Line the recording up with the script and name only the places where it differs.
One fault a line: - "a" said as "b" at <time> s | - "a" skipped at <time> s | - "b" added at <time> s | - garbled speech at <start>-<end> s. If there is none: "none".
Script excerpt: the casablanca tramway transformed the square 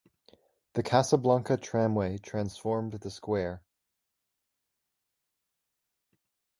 none